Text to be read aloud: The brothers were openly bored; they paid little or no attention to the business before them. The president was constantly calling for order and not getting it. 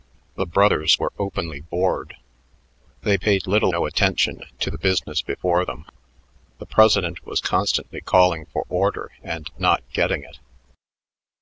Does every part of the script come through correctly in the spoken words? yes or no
no